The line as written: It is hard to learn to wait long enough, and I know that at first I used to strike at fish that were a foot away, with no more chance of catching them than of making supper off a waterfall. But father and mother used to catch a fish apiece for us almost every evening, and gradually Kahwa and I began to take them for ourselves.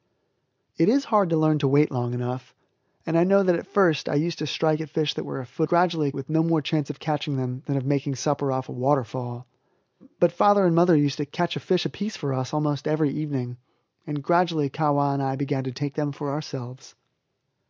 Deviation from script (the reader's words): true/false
true